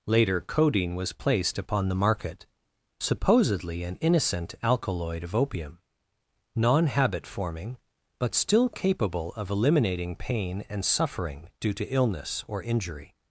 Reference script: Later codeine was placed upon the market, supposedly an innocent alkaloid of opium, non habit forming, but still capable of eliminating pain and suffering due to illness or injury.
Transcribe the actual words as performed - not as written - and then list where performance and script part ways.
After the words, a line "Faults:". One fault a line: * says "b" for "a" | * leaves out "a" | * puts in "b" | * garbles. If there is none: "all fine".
Later codeine was placed upon the market, supposedly an innocent alkaloid of opium, non habit forming, but still capable of eliminating pain and suffering due to illness or injury.
Faults:
all fine